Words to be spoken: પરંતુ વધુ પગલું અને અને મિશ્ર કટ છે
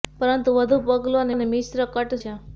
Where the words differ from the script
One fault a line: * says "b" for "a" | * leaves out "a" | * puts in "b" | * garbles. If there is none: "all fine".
all fine